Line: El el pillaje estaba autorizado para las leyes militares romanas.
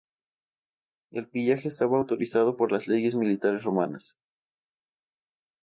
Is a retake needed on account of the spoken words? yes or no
yes